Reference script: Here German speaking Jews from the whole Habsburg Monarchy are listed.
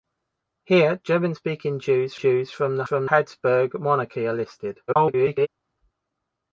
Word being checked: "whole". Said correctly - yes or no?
no